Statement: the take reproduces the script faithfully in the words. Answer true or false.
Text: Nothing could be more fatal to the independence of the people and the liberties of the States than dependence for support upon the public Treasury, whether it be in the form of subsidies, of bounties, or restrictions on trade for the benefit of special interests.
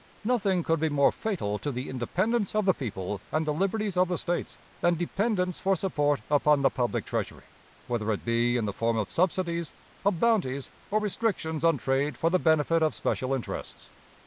true